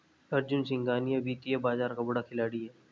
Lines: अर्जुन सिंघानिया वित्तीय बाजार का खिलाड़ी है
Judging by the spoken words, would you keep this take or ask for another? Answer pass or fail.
fail